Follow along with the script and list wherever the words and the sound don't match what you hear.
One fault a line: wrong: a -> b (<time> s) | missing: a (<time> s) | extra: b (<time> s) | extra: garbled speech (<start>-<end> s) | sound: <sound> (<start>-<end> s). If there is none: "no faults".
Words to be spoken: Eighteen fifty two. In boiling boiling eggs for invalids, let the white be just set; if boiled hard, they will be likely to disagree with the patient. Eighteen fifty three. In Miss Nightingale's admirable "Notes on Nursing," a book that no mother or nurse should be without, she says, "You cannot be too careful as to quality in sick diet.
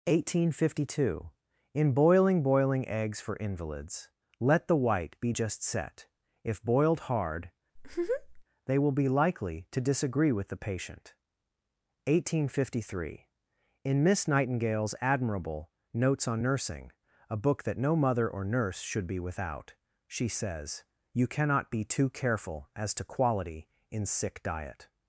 sound: laugh (7.8-8.4 s)